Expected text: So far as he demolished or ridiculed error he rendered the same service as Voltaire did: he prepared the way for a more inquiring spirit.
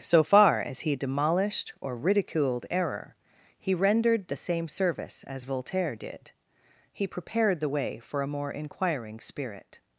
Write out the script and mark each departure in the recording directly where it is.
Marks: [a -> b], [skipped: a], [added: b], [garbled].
So far as he demolished or ridiculed error he rendered the same service as Voltaire did: he prepared the way for a more inquiring spirit.